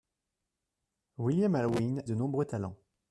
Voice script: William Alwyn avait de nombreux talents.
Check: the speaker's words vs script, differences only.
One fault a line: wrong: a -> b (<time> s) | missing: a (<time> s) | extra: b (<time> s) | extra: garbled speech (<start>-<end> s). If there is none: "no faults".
missing: avait (2.0 s)